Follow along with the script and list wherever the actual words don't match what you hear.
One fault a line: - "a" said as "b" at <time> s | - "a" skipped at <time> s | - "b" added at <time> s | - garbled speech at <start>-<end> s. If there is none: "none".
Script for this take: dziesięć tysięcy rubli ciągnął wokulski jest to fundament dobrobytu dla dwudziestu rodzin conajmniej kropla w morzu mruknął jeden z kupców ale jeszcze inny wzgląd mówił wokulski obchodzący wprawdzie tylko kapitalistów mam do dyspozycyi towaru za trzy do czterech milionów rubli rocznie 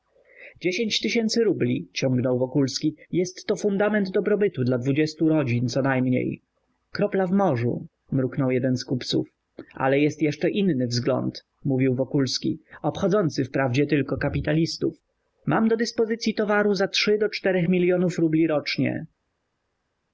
- "jest" added at 10.0 s